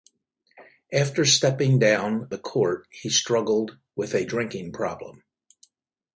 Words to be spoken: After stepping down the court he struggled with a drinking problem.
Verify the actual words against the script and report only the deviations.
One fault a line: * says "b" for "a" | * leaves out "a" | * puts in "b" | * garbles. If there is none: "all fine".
all fine